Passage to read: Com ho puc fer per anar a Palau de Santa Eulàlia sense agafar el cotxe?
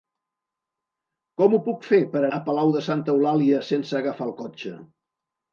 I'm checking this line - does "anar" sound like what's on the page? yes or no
no